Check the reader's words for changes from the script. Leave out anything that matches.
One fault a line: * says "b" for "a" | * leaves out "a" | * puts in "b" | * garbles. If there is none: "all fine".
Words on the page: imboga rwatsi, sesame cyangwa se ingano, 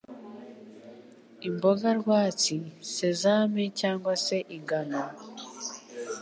all fine